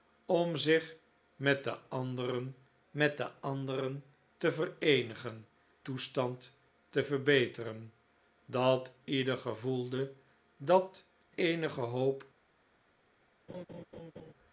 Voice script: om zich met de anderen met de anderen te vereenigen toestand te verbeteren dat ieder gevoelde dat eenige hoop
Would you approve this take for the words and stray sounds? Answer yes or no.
no